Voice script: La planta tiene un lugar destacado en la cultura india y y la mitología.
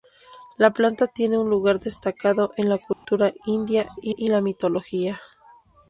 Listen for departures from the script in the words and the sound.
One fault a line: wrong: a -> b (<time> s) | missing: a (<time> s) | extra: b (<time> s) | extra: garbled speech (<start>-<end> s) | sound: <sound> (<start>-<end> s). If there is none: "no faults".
sound: dropout (2.9-3.1 s)